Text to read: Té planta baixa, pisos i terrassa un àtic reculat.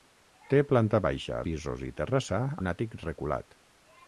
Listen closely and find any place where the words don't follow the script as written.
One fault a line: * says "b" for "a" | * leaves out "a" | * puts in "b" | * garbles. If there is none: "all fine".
all fine